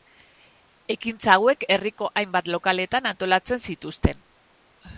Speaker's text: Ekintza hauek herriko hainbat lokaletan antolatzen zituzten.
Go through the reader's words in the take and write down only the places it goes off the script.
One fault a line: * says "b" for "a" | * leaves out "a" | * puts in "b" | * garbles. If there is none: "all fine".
all fine